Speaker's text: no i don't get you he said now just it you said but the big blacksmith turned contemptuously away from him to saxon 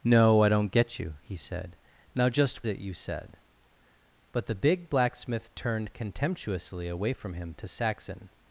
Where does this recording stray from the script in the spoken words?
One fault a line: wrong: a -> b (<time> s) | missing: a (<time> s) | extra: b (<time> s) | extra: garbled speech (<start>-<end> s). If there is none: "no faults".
no faults